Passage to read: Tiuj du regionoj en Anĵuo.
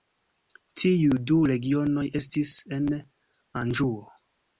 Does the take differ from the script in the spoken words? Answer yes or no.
yes